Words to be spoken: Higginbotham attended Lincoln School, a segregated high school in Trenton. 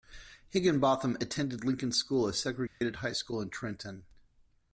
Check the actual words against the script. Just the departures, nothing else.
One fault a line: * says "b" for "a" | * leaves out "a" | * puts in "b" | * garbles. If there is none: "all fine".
all fine